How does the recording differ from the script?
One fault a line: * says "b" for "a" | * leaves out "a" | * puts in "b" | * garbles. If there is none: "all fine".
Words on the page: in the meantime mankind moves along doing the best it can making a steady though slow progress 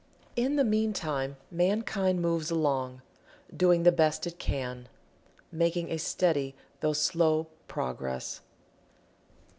all fine